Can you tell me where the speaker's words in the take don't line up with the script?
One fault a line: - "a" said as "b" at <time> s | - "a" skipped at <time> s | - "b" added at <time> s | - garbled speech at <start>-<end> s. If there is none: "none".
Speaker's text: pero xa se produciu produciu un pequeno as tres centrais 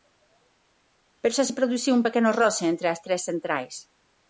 - "produciu" skipped at 1.9 s
- "roce entre" added at 2.4 s